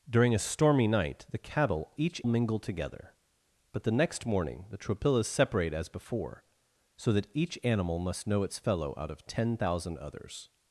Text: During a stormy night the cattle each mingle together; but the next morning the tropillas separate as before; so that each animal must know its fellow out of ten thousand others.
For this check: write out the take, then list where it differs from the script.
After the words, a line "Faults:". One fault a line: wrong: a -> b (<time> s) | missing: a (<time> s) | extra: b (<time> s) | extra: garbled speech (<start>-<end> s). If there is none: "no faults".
During a stormy night the cattle each mingle together; but the next morning the tropillas separate as before; so that each animal must know its fellow out of ten thousand others.
Faults:
no faults